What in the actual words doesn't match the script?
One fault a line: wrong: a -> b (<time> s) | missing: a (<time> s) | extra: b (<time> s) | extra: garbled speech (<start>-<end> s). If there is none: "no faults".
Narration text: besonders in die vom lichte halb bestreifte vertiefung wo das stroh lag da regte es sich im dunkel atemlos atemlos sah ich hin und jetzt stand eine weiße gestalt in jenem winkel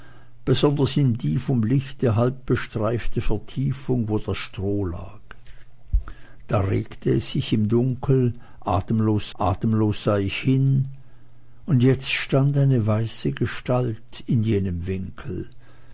no faults